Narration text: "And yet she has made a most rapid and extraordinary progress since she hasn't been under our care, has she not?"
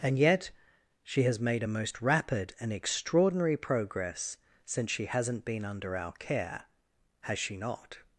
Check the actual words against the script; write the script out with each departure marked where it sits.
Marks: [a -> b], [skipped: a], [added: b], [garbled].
"And yet she has made a most rapid and extraordinary progress since she hasn't been under our care, has she not?"